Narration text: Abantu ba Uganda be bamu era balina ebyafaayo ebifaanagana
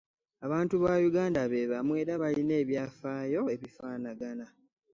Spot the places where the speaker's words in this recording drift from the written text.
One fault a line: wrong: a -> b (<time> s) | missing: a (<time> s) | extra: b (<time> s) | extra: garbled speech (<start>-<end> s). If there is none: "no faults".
no faults